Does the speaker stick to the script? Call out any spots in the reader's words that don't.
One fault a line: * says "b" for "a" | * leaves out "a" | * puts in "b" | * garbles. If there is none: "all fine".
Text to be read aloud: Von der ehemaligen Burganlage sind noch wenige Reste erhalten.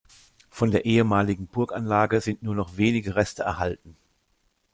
* puts in "nur"